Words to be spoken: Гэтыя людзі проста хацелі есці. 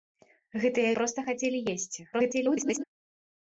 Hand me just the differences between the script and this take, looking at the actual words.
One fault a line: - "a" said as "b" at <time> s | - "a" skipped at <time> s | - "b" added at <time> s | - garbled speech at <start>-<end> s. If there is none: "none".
- "людзі" skipped at 0.9 s
- garbled speech at 2.1-2.8 s